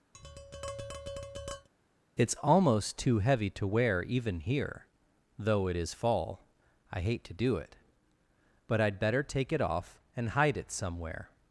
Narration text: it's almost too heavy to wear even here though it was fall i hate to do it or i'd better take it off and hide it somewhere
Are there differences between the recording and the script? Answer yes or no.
yes